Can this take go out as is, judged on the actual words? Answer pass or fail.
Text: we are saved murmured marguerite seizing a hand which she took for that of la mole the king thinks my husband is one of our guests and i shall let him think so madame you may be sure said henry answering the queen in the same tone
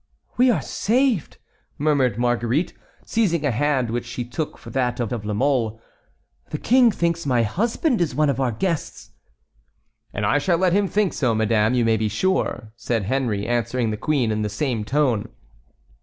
fail